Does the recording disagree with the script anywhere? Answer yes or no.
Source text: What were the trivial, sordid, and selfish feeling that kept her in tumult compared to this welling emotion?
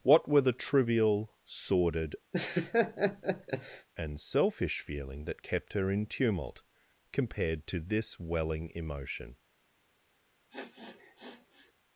no